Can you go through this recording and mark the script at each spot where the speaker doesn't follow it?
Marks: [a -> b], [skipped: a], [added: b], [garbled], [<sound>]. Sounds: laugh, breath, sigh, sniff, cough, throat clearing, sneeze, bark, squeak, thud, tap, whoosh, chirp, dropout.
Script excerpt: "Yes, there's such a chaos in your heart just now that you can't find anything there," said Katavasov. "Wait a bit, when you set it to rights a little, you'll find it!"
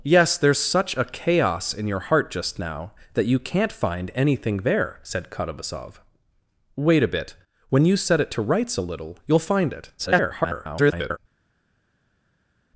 "Yes, there's such a chaos in your heart just now that you can't find anything there," said Katavasov. "Wait a bit, when you set it to rights a little, you'll find it!" [garbled]